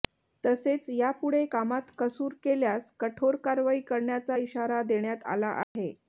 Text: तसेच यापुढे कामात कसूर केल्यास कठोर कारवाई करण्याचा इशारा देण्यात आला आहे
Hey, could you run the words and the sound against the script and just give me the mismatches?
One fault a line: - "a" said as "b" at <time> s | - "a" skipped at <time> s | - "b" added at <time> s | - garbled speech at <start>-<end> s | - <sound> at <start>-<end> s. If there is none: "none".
- dropout at 5.6-5.8 s